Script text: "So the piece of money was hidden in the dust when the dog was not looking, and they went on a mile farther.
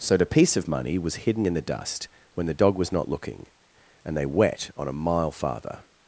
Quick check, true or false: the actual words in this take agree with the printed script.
false